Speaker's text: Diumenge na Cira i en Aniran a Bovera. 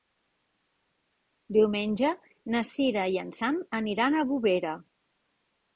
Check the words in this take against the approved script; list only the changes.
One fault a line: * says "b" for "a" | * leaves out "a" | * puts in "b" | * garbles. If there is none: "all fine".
* puts in "Sam"